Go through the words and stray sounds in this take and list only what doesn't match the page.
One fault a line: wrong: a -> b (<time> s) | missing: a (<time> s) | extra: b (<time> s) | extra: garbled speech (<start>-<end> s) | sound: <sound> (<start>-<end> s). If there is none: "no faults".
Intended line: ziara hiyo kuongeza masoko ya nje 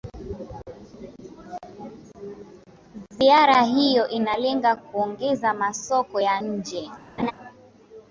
extra: inalenga (4.1 s)
sound: laugh (7.2-7.3 s)